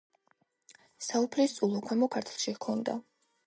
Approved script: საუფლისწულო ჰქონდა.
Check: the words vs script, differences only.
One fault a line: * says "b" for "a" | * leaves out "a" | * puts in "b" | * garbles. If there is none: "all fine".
* puts in "ქვემო ქართლში"